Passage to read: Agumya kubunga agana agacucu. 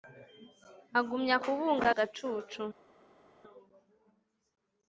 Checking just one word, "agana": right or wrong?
wrong